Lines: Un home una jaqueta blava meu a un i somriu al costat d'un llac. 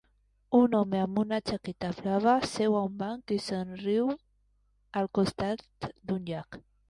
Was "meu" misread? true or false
true